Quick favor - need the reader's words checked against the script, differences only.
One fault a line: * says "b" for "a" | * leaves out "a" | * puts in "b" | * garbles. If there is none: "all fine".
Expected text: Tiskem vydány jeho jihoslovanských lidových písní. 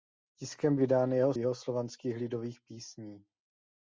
all fine